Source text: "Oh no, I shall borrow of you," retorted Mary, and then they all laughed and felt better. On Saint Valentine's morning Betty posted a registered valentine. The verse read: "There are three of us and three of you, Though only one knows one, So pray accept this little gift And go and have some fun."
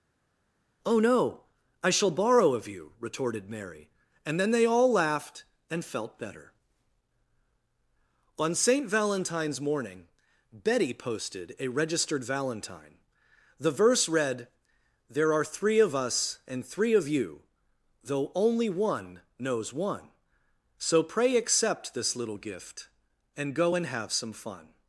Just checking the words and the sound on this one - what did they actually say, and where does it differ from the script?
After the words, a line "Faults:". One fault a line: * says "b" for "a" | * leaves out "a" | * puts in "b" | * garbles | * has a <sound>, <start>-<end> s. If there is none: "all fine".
"Oh no, I shall borrow of you," retorted Mary, and then they all laughed and felt better. On Saint Valentine's morning Betty posted a registered valentine. The verse read: "There are three of us and three of you, Though only one knows one, So pray accept this little gift And go and have some fun."
Faults:
all fine